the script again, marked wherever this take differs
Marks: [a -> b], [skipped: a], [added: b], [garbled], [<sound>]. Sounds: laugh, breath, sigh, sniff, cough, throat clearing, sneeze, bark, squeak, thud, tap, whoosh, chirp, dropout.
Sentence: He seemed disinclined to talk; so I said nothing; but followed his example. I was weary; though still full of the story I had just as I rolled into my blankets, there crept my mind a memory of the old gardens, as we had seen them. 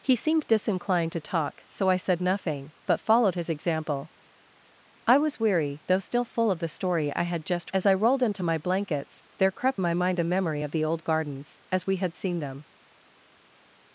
He seemed disinclined to talk; so I said nothing; but followed his example. I was weary; though still full of the story I had just as I rolled into my blankets, there crept my mind a memory of the old gardens, as we had seen them.